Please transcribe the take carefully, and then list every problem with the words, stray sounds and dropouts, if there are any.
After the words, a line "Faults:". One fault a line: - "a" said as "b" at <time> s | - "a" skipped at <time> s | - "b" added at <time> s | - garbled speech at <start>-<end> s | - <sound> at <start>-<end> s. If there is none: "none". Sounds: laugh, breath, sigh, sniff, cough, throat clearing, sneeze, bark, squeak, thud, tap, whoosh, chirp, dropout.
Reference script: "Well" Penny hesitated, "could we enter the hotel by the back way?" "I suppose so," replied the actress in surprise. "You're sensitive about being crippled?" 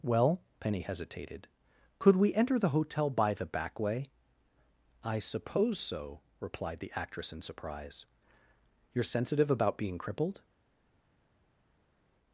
"Well" Penny hesitated, "could we enter the hotel by the back way?" "I suppose so," replied the actress in surprise. "You're sensitive about being crippled?"
Faults:
none